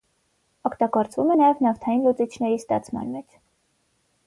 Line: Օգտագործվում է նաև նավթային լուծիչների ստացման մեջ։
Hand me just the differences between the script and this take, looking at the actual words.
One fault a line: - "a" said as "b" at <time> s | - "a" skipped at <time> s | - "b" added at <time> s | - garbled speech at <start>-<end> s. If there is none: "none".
none